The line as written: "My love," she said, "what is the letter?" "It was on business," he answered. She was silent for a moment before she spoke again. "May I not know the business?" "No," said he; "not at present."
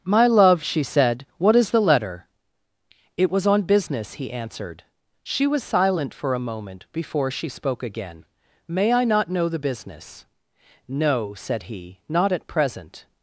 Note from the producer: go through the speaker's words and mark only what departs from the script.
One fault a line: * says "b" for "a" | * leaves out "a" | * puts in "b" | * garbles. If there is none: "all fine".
all fine